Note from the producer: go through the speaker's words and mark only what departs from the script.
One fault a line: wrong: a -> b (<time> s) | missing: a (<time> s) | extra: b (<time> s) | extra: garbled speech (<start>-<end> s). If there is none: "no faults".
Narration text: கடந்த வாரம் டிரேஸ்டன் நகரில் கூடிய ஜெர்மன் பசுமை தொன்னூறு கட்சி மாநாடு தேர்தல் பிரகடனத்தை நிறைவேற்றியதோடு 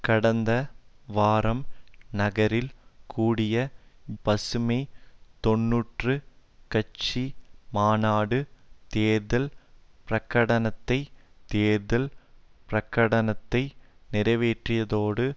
missing: டிரேஸ்டன் (1.6 s)
missing: ஜெர்மன் (3.5 s)
extra: தேர்தல் பிரகடனத்தை (11.5 s)